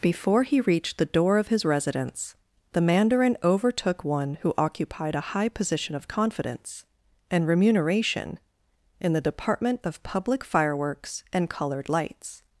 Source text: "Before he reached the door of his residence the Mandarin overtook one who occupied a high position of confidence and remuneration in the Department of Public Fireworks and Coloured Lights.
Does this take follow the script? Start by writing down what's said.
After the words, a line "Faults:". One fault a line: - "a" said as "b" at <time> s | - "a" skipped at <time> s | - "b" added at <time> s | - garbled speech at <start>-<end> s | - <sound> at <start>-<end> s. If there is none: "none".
"Before he reached the door of his residence the Mandarin overtook one who occupied a high position of confidence and remuneration in the Department of Public Fireworks and Coloured Lights.
Faults:
none